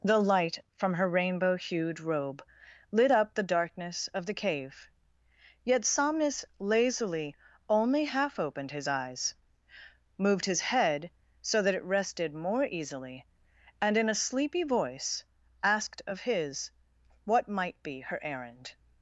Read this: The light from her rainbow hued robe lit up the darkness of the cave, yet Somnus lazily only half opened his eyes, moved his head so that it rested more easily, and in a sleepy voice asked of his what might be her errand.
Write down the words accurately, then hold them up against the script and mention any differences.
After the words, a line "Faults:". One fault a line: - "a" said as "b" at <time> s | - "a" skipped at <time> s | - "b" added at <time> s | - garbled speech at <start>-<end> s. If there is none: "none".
The light from her rainbow hued robe lit up the darkness of the cave, yet Somnus lazily only half opened his eyes, moved his head so that it rested more easily, and in a sleepy voice asked of his what might be her errand.
Faults:
none